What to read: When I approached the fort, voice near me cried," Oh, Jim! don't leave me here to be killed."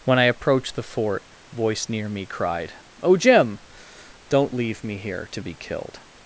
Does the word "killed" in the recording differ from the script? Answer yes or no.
no